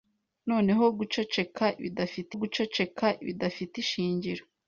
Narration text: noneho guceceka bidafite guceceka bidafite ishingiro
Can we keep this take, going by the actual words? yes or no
yes